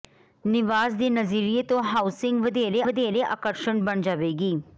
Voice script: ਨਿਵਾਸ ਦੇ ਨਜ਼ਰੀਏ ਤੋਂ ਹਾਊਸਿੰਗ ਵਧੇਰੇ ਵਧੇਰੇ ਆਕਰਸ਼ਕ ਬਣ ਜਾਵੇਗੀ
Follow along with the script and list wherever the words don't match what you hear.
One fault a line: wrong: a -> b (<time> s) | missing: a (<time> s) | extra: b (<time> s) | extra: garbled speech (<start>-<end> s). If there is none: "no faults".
no faults